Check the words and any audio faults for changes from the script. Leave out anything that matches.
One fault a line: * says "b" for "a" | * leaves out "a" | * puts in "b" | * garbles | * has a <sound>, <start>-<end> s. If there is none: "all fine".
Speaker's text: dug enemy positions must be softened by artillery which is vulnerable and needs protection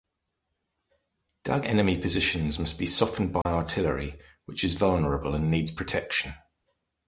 * has a dropout, 3.4-3.5 s